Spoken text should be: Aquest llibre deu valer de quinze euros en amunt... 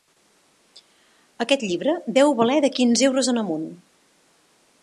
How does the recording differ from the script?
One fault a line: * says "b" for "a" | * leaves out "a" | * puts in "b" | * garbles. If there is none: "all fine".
all fine